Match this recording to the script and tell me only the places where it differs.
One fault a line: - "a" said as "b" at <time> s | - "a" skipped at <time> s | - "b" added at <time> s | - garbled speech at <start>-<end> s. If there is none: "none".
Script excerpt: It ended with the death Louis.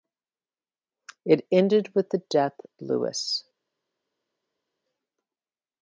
none